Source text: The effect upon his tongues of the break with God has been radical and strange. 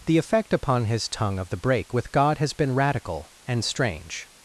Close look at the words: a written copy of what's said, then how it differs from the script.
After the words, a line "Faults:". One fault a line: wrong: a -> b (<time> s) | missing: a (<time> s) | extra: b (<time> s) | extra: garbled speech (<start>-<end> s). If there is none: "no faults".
The effect upon his tongue of the break with God has been radical and strange.
Faults:
wrong: tongues -> tongue (1.1 s)